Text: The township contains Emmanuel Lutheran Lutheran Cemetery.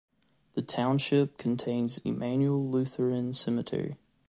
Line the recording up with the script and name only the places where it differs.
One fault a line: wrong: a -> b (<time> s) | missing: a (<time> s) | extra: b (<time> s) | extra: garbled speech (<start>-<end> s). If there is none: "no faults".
missing: Lutheran (3.3 s)